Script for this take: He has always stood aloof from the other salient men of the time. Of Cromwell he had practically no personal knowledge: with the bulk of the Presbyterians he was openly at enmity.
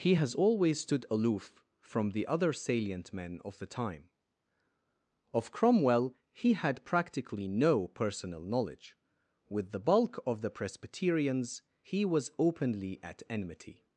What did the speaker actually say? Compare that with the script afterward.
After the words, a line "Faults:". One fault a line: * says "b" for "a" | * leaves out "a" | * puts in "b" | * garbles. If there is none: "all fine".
He has always stood aloof from the other salient men of the time. Of Cromwell he had practically no personal knowledge: with the bulk of the Presbyterians he was openly at enmity.
Faults:
all fine